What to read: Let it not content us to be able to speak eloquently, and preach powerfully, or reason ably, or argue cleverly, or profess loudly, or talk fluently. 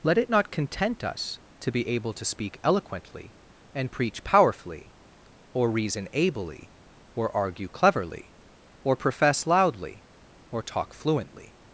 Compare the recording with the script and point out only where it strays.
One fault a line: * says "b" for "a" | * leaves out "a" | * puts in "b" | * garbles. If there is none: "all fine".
all fine